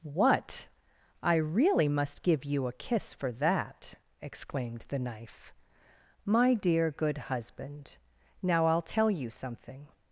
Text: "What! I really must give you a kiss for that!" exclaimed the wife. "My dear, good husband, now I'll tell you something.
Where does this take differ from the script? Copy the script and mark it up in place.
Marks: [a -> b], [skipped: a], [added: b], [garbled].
"What! I really must give you a kiss for that!" exclaimed the [wife. -> knife] "My dear, good husband, now I'll tell you something.